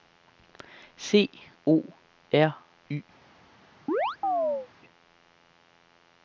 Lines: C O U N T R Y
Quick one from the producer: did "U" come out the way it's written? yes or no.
no